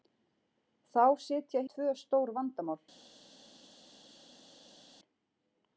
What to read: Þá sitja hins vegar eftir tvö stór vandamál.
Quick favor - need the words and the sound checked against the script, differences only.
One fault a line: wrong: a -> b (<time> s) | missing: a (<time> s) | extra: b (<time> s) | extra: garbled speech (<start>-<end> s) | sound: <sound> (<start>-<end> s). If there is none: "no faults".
missing: hins vegar eftir (1.6 s)